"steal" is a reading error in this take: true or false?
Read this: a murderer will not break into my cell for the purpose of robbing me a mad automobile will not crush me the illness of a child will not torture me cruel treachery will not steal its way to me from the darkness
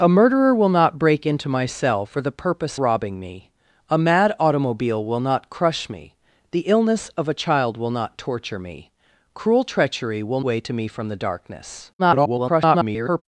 true